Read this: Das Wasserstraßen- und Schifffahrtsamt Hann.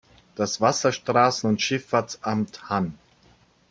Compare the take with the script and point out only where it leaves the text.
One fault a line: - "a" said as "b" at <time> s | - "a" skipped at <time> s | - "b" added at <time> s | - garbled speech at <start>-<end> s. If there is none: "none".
none